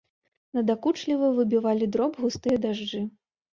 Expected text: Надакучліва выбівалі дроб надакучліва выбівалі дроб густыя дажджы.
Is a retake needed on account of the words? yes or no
yes